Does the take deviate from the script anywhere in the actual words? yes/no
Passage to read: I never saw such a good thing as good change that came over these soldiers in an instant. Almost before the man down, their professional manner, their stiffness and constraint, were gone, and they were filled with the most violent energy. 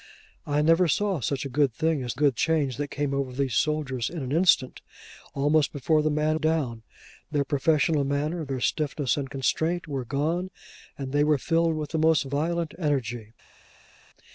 no